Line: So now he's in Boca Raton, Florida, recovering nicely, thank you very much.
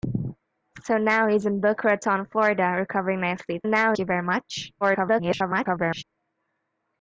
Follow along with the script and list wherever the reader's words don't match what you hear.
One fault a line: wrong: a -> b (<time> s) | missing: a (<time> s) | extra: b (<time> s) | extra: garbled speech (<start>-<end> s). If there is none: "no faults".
wrong: thank -> now (3.6 s)
extra: garbled speech (4.8-6.0 s)